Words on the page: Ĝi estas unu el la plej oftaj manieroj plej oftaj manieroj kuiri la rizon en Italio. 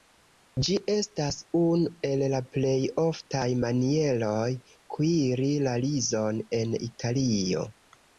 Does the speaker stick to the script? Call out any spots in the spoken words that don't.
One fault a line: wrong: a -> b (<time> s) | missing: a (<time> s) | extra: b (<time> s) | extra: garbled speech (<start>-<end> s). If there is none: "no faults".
missing: plej oftaj manieroj (4.4 s)